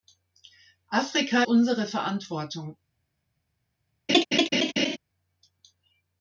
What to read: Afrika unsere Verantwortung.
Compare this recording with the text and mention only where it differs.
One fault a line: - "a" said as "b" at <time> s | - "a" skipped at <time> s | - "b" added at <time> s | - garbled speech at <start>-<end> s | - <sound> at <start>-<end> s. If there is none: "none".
- laugh at 4.1-5.0 s